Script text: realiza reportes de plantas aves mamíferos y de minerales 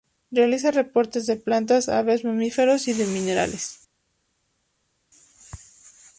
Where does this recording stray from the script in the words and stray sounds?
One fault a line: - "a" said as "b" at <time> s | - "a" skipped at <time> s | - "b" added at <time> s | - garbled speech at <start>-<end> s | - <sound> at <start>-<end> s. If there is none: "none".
none